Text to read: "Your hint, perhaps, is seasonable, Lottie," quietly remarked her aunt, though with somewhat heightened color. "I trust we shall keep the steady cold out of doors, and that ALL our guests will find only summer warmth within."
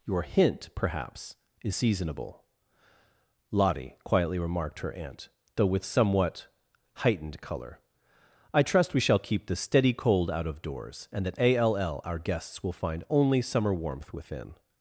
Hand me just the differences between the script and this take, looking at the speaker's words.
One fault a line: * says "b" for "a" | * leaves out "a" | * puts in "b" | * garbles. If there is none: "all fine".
all fine